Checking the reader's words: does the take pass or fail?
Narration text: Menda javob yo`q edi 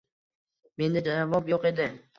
pass